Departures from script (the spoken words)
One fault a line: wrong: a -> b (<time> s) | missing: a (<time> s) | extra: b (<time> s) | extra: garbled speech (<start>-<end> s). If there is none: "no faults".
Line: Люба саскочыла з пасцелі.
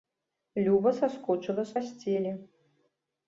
no faults